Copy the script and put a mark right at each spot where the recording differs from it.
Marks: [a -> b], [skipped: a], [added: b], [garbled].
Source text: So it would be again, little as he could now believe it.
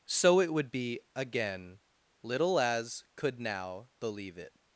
So it would be again, little as [skipped: he] could now believe it.